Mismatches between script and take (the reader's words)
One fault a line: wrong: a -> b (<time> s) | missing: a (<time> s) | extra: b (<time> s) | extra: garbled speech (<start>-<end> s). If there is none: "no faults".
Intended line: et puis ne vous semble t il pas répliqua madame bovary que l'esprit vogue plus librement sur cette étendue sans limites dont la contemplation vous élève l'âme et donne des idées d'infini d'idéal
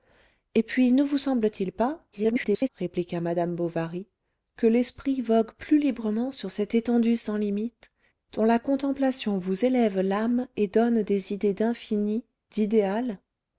extra: garbled speech (2.1-2.7 s)